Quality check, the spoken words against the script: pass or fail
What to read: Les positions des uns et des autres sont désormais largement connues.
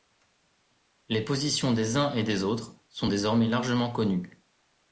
pass